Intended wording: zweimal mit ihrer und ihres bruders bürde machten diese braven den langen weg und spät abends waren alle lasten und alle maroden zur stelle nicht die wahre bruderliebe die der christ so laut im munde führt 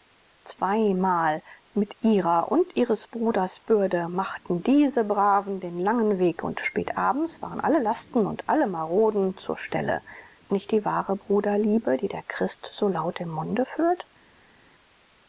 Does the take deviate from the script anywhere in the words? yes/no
no